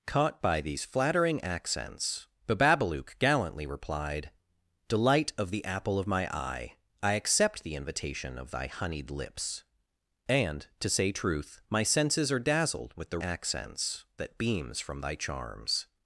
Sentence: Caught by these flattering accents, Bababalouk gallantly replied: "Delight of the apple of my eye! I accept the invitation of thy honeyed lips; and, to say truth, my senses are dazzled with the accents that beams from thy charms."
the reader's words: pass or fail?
pass